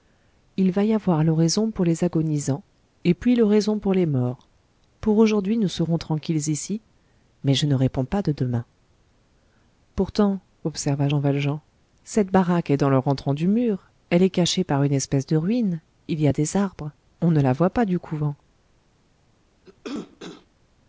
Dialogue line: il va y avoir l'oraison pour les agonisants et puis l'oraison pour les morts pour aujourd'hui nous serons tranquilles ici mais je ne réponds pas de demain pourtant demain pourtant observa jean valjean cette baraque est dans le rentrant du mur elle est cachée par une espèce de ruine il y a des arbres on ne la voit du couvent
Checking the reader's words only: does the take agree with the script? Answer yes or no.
no